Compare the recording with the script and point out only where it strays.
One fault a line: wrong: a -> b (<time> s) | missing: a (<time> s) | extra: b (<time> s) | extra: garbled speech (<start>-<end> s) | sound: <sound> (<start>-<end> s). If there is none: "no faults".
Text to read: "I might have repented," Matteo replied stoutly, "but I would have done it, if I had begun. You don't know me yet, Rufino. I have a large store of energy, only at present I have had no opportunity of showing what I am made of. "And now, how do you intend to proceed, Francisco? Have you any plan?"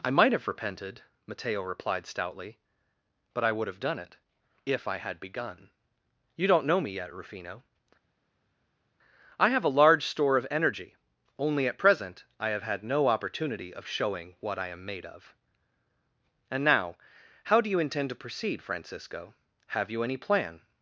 no faults